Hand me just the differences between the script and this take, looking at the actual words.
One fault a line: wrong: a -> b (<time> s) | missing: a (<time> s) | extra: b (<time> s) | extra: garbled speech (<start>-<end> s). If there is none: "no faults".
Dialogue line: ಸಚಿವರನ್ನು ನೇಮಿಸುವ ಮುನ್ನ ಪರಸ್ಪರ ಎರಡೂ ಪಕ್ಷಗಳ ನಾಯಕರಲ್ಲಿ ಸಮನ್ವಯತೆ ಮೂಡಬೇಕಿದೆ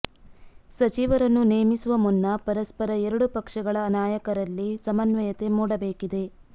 no faults